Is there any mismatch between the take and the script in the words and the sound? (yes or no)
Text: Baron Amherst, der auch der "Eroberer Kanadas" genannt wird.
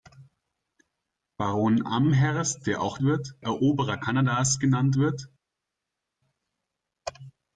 yes